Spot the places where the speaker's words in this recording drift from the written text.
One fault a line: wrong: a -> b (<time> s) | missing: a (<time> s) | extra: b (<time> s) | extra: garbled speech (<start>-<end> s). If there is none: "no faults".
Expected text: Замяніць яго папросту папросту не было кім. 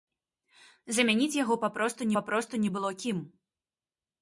no faults